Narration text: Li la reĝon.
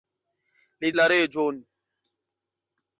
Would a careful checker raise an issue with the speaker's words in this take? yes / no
no